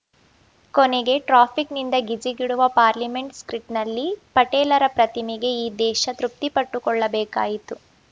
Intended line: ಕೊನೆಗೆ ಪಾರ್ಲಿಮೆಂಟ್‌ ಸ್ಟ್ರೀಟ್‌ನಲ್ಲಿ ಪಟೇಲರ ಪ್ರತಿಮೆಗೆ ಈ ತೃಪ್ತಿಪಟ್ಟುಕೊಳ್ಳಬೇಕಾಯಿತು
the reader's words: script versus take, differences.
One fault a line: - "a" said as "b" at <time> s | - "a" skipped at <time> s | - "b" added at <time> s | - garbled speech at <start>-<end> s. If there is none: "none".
- "ಟ್ರಾಫಿಕ್‌ನಿಂದ ಗಿಜಿಗುಡುವ" added at 1.2 s
- "ದೇಶ" added at 5.8 s